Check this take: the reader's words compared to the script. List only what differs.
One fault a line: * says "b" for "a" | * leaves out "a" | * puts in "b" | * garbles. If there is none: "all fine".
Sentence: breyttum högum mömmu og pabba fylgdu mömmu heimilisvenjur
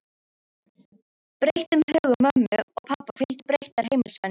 * says "breyttar" for "mömmu"